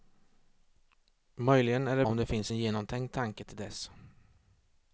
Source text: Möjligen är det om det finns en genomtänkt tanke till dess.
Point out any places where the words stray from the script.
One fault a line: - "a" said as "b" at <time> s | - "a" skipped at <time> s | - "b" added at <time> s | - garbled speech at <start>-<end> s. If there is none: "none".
none